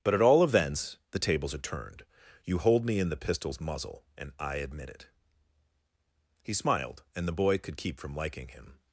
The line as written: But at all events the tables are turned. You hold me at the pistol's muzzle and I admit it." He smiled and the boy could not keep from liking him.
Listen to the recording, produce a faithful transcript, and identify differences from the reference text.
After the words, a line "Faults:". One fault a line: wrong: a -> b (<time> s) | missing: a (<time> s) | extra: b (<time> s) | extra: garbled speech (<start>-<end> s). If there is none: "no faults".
But at all events the tables are turned. You hold me in the pistol's muzzle and I admit it." He smiled and the boy could keep from liking him.
Faults:
wrong: at -> in (3.0 s)
missing: not (7.8 s)